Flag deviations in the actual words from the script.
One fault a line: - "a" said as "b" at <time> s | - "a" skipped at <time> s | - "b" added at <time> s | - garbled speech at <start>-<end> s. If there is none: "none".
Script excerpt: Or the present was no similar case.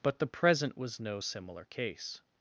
- "Or" said as "But" at 0.0 s